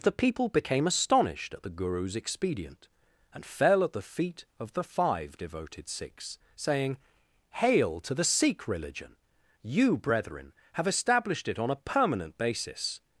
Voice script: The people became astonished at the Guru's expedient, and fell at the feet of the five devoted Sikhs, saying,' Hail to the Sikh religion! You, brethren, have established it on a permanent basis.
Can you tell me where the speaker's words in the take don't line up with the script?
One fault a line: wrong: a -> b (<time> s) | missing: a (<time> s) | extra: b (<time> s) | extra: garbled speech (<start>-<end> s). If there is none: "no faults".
no faults